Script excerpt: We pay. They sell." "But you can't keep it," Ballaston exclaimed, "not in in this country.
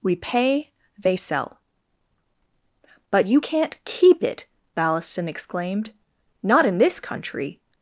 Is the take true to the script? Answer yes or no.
no